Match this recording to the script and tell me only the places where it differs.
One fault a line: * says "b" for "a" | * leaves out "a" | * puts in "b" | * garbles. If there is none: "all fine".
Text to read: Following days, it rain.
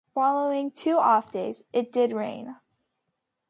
* puts in "two off"
* puts in "did"